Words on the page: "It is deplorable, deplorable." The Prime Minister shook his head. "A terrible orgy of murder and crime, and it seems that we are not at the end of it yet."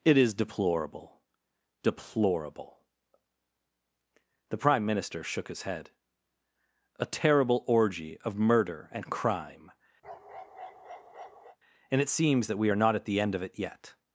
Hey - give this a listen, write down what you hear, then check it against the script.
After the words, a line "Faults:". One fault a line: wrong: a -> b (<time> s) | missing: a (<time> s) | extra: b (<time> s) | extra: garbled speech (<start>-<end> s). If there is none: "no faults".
"It is deplorable, deplorable." The Prime Minister shook his head. "A terrible orgy of murder and crime, and it seems that we are not at the end of it yet."
Faults:
no faults